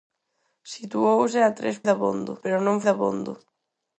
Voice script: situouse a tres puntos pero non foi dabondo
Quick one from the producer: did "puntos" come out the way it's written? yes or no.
no